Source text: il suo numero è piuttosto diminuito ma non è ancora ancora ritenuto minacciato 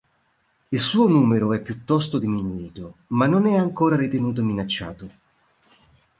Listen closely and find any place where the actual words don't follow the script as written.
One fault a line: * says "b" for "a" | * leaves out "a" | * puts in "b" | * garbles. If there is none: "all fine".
* leaves out "ancora"